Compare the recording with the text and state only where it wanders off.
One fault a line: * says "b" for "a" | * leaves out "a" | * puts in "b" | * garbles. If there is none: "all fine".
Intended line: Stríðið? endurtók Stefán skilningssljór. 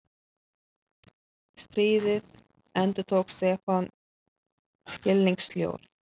all fine